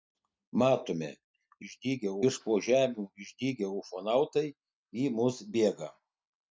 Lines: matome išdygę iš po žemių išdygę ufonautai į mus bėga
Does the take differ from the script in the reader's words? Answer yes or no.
no